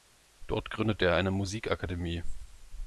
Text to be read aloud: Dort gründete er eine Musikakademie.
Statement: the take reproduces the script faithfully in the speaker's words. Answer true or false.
true